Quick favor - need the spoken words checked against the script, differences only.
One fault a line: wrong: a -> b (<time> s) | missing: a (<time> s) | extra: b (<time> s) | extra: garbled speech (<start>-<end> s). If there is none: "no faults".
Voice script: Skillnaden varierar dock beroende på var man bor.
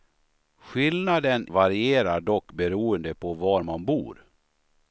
no faults